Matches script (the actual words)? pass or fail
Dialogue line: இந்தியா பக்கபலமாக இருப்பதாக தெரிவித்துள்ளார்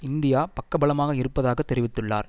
pass